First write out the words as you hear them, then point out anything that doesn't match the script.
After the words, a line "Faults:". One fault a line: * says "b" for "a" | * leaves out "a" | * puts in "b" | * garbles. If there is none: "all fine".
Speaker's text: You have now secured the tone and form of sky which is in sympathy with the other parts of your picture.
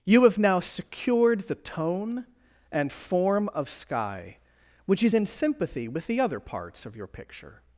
You have now secured the tone and form of sky which is in sympathy with the other parts of your picture.
Faults:
all fine